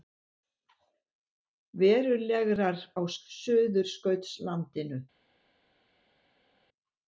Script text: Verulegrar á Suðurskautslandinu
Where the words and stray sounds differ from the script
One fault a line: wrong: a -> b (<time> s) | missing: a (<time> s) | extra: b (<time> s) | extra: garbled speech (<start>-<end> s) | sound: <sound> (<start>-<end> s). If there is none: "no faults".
no faults